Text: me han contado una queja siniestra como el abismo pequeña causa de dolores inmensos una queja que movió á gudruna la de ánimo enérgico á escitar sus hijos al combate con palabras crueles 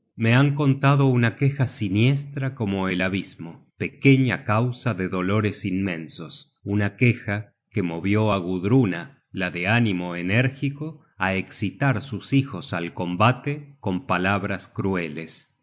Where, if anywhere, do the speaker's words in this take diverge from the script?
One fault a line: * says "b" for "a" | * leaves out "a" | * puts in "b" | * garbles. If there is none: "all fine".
all fine